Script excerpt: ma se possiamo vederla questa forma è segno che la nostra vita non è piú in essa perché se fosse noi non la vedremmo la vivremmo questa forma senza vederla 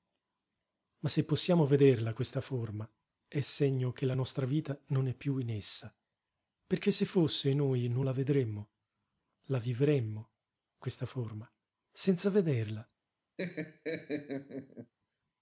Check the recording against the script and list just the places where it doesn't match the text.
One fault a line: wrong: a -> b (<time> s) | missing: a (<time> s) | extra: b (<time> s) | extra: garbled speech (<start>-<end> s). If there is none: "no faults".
no faults